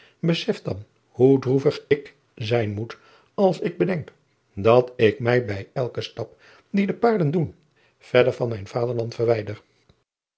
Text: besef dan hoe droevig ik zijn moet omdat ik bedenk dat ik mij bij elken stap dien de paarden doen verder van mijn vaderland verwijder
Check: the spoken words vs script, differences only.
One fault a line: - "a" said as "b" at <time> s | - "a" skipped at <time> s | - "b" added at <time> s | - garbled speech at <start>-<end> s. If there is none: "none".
- "omdat" said as "als" at 3.3 s